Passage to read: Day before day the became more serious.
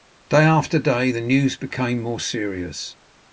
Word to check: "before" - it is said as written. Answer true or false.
false